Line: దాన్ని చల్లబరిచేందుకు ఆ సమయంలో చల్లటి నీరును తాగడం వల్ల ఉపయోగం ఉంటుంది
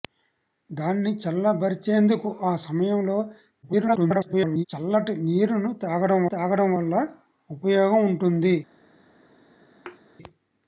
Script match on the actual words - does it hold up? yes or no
no